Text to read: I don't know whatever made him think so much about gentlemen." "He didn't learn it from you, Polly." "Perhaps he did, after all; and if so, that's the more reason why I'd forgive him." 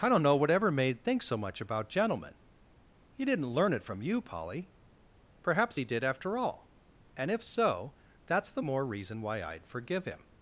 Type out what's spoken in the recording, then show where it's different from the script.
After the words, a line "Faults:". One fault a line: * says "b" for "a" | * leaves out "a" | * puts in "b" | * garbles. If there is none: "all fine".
I don't know whatever made think so much about gentlemen." "He didn't learn it from you, Polly." "Perhaps he did, after all; and if so, that's the more reason why I'd forgive him."
Faults:
* leaves out "him"